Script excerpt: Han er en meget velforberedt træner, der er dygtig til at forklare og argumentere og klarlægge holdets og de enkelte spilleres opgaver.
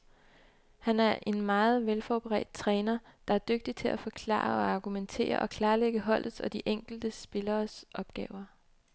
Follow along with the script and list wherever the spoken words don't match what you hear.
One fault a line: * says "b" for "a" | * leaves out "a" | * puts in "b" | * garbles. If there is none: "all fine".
all fine